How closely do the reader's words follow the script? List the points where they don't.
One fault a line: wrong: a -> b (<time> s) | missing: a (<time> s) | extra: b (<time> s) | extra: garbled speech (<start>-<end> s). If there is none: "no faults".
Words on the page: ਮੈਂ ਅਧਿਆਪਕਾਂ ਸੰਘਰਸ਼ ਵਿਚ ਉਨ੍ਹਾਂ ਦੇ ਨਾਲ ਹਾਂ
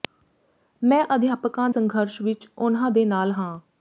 no faults